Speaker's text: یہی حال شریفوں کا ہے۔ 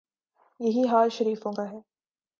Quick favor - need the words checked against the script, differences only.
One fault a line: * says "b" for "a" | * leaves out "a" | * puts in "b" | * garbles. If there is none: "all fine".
all fine